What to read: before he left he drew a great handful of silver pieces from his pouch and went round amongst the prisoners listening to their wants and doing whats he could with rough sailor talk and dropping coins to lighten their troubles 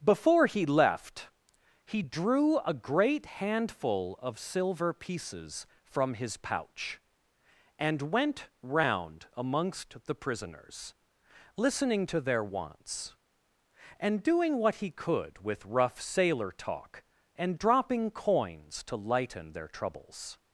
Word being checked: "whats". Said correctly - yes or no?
no